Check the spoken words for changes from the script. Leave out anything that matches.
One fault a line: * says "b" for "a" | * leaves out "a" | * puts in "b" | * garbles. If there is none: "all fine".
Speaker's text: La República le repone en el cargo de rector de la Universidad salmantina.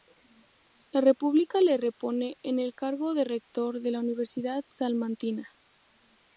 all fine